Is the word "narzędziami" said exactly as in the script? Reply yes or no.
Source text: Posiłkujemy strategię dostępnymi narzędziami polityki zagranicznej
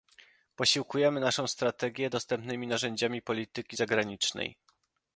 yes